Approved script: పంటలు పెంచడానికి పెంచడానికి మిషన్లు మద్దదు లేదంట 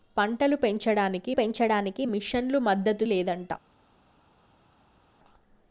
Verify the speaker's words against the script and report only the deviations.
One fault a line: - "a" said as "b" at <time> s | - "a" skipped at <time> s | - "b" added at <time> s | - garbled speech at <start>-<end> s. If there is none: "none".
none